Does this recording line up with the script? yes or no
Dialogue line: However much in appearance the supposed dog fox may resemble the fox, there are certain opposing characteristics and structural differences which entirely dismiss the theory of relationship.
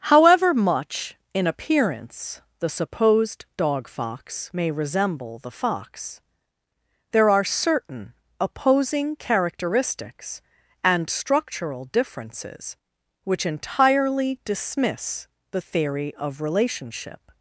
yes